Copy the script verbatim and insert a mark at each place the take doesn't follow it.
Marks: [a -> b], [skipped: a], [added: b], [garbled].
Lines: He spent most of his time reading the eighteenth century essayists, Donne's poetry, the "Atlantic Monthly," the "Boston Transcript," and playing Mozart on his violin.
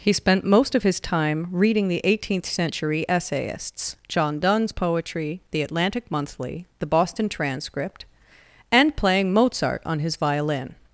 He spent most of his time reading the eighteenth century essayists, [added: John] Donne's poetry, the "Atlantic Monthly," the "Boston Transcript," and playing Mozart on his violin.